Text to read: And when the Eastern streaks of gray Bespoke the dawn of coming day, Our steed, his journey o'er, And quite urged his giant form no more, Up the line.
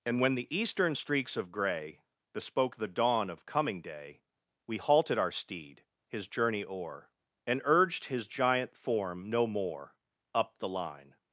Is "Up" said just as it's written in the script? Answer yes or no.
yes